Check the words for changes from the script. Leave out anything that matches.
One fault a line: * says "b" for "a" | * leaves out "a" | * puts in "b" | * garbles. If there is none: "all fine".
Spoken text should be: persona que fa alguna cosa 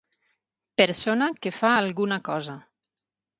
all fine